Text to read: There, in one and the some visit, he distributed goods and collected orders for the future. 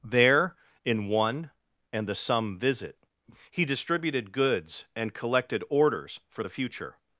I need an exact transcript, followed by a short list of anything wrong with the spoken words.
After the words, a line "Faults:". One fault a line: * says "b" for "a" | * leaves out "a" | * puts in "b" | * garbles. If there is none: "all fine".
There, in one and the some visit, he distributed goods and collected orders for the future.
Faults:
all fine